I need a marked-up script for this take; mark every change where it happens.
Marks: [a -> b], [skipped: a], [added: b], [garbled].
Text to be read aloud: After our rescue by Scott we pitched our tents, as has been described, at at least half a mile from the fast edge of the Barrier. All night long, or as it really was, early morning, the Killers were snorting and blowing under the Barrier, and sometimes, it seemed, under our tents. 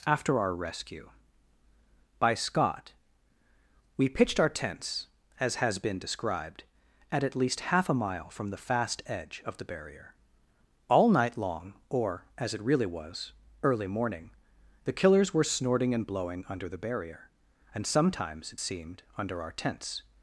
After our rescue by Scott we pitched our tents, as has been described, at at least half a mile from the fast edge of the Barrier. All night long, or as it really was, early morning, the Killers were snorting and blowing under the Barrier, and sometimes, it seemed, under our tents.